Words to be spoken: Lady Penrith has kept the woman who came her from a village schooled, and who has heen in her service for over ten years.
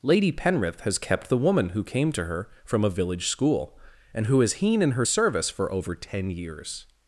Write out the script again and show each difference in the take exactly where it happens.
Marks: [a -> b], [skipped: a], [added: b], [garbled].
Lady Penrith has kept the woman who came [added: to] her from a village [schooled, -> school] and who has heen in her service for over ten years.